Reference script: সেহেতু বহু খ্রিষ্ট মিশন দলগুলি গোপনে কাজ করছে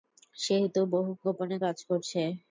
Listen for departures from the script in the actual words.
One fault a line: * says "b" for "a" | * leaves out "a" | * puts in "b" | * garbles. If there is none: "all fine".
* leaves out "খ্রিষ্ট মিশন দলগুলি"